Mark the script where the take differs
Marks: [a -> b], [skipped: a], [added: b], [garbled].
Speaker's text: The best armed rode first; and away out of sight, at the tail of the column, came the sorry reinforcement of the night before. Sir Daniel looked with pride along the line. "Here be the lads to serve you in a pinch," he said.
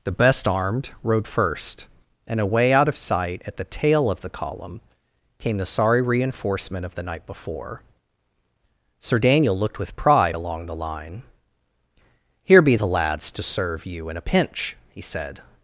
The best armed rode first; and away out of sight, at the tail of the column, came the sorry reinforcement of the night before. Sir Daniel looked with pride along the line. "Here be the lads to serve you in a pinch," he said.